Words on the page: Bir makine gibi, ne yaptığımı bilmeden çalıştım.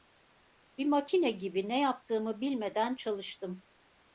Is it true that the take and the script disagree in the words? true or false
false